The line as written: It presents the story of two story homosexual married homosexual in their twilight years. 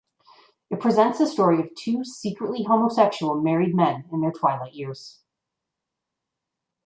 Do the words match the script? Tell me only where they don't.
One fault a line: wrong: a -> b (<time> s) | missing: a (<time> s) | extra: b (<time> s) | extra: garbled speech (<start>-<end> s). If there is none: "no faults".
wrong: story -> secretly (2.0 s)
wrong: homosexual -> men (3.7 s)